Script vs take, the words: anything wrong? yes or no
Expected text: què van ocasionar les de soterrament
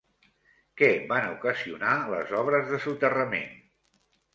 yes